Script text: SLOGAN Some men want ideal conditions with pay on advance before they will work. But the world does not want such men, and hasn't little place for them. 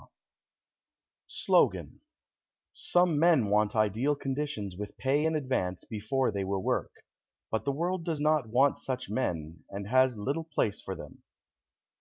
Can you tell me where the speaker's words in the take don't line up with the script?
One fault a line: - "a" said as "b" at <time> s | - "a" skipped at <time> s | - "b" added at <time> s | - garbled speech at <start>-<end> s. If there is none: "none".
- "on" said as "in" at 5.2 s
- "hasn't" said as "has" at 9.9 s